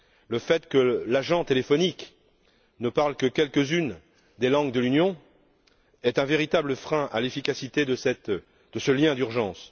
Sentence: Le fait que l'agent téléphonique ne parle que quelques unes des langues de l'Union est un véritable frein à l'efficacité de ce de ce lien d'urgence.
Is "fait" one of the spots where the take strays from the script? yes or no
no